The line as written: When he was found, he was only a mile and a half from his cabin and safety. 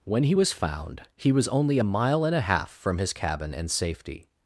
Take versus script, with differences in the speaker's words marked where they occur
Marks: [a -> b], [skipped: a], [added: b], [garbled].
When he was found, he was only a mile and a half from his cabin and safety.